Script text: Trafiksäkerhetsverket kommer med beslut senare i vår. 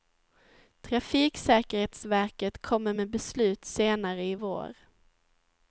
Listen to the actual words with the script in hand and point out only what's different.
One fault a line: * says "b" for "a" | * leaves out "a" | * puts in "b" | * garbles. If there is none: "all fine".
all fine